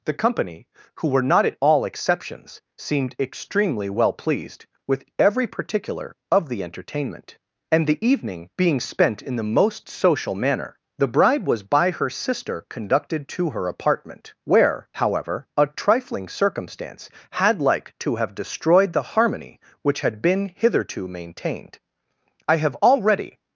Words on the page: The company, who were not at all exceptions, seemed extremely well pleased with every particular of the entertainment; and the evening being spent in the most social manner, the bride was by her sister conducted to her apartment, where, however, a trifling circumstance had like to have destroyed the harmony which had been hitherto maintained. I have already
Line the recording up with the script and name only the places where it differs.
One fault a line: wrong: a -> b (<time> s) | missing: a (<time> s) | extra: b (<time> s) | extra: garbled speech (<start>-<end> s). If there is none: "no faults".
no faults